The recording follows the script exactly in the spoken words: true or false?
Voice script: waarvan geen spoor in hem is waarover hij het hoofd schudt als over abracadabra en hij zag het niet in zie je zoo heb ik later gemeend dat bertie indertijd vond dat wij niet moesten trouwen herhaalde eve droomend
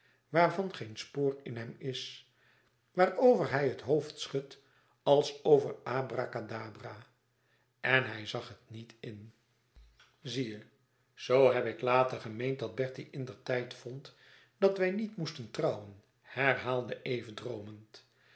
true